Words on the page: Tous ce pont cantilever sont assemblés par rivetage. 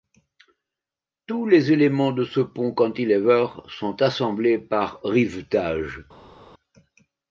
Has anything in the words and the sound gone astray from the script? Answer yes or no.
yes